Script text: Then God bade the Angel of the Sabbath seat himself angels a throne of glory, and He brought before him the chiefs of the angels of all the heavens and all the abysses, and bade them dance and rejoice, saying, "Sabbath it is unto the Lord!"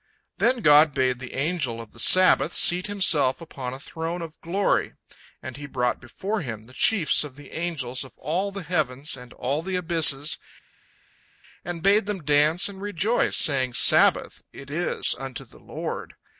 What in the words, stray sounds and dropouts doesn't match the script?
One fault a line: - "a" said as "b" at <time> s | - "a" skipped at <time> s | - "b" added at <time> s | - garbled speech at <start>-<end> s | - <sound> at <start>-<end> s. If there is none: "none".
- "angels" said as "upon" at 3.4 s